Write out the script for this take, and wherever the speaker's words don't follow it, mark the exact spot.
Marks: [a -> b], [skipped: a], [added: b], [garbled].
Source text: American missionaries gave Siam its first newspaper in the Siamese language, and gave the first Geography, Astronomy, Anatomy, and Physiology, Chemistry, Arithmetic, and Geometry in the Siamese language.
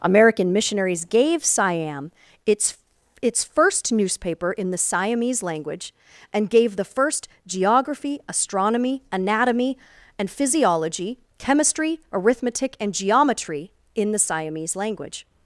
American missionaries gave Siam its [added: its] first newspaper in the Siamese language, and gave the first Geography, Astronomy, Anatomy, and Physiology, Chemistry, Arithmetic, and Geometry in the Siamese language.